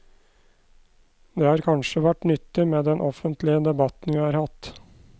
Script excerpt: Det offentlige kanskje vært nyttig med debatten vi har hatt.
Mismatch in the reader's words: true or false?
true